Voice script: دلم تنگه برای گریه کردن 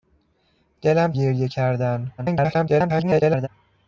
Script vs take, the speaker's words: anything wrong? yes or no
yes